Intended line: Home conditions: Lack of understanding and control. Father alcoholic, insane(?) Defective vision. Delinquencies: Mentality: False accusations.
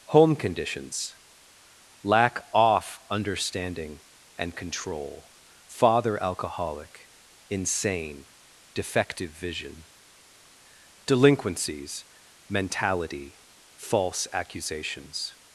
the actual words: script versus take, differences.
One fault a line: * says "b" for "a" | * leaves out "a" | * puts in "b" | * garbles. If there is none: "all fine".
* says "off" for "of"